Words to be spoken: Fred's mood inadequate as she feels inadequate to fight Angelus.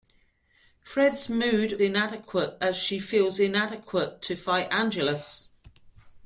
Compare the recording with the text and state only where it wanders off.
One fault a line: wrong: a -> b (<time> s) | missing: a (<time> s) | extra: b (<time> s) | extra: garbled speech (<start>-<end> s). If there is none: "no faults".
no faults